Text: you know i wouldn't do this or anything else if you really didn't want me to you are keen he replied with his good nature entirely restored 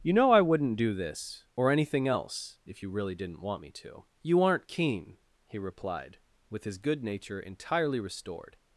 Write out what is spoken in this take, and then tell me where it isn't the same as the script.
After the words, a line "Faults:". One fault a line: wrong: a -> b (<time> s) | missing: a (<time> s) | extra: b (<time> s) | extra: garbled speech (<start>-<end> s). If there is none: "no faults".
you know i wouldn't do this or anything else if you really didn't want me to you aren't keen he replied with his good nature entirely restored
Faults:
wrong: are -> aren't (4.4 s)